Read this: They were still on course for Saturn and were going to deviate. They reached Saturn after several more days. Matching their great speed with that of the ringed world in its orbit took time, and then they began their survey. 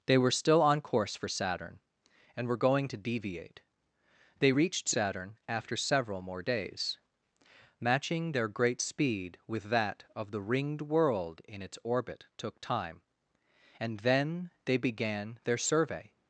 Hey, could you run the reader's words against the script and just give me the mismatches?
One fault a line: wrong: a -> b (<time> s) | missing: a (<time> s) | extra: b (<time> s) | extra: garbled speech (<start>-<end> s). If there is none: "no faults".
no faults